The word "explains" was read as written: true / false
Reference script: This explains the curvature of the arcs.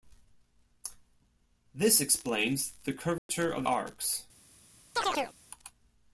true